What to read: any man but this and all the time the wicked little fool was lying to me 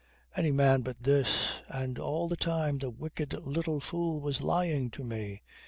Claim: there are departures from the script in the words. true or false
false